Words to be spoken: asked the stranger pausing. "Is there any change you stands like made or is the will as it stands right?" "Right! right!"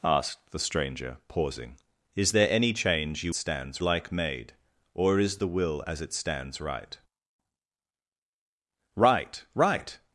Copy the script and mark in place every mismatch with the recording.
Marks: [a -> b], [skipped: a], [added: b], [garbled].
asked the stranger pausing. "Is there any change you stands like made or is the will as it stands right?" "Right! right!"